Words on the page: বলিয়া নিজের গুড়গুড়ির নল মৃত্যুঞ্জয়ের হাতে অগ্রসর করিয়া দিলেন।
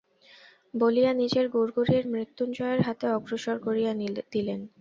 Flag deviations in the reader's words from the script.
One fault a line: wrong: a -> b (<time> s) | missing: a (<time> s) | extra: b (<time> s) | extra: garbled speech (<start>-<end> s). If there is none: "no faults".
missing: নল (2.0 s)